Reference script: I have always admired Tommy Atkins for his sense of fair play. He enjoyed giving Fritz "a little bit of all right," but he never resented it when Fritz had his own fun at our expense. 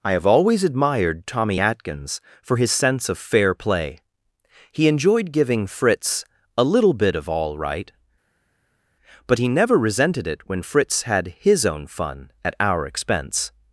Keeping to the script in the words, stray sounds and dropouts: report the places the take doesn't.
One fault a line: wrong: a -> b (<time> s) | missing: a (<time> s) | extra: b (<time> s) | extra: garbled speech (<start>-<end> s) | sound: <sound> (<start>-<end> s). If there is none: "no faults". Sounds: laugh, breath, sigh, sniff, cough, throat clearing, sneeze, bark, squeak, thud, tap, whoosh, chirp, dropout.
no faults